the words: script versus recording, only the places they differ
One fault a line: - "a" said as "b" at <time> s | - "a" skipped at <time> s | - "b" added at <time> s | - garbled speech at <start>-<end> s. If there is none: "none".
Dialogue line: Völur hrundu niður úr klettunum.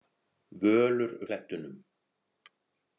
- "hrundu niður úr" skipped at 1.1 s